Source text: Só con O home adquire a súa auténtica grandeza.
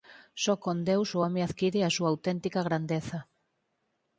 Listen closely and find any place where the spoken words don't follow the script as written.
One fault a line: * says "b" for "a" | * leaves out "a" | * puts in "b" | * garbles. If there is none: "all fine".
* puts in "Deus"